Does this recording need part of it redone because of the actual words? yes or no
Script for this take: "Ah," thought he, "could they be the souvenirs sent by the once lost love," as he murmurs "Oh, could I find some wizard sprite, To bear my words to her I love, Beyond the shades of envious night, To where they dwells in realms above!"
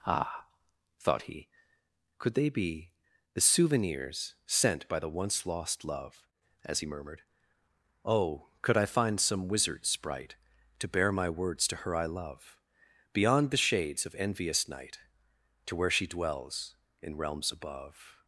yes